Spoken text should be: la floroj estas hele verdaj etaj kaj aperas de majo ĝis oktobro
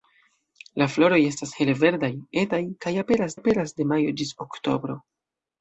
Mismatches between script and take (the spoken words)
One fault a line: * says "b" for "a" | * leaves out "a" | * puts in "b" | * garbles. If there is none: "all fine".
* puts in "aperas"